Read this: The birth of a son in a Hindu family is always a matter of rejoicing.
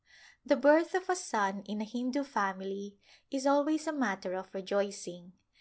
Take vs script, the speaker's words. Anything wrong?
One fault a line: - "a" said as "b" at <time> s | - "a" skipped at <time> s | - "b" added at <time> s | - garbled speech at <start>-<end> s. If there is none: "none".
none